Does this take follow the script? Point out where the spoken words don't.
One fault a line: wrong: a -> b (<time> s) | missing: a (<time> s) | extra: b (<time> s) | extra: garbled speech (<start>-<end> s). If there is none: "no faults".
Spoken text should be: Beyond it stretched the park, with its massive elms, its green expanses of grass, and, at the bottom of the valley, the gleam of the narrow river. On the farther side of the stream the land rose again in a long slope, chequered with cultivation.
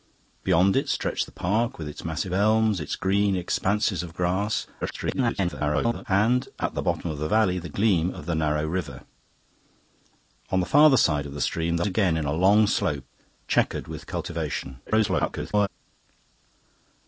extra: garbled speech (4.8-6.0 s)
missing: land rose (11.9 s)
extra: garbled speech (14.9-15.7 s)